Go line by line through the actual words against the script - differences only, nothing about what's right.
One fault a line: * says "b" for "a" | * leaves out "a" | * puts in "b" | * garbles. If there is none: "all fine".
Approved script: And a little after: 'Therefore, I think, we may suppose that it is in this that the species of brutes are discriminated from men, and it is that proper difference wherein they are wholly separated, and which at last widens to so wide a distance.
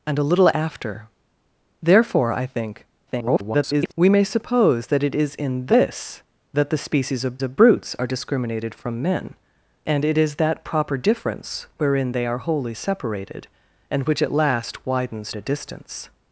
* garbles
* puts in "of"
* leaves out "to so wide"